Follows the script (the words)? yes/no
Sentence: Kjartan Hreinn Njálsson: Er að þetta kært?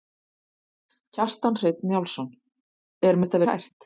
yes